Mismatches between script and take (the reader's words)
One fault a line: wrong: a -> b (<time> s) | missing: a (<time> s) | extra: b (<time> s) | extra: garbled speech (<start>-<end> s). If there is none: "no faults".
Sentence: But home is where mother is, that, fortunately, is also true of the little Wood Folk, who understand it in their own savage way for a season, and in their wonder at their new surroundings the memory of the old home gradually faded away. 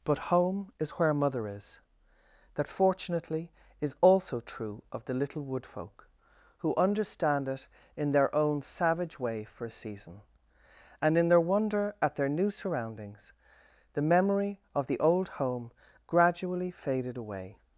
no faults